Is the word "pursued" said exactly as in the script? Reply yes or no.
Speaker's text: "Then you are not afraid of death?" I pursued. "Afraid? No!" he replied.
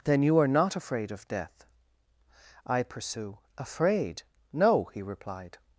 no